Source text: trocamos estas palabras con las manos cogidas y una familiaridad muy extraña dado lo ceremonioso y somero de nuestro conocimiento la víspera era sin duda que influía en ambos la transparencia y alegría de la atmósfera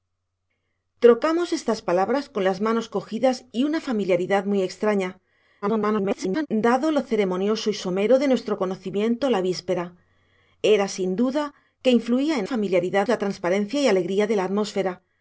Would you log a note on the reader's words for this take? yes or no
yes